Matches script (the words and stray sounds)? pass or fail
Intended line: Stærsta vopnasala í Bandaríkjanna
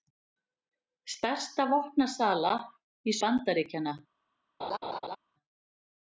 fail